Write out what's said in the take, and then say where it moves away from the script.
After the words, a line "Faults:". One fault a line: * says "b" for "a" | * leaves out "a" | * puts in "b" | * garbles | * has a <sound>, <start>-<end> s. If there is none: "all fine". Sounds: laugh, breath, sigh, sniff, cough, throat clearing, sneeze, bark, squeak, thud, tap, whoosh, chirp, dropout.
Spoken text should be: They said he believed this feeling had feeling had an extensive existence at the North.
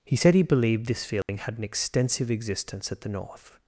He said he believed this feeling had an extensive existence at the North.
Faults:
* says "He" for "They"
* has a dropout, 1.2-1.3 s
* leaves out "feeling had"